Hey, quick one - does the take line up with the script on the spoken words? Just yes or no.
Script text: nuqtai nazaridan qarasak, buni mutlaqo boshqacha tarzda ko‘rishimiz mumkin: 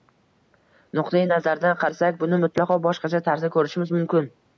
yes